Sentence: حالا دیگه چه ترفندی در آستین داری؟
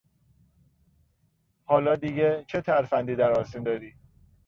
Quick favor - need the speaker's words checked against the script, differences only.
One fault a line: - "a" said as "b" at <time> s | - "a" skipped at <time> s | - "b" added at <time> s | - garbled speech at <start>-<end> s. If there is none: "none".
none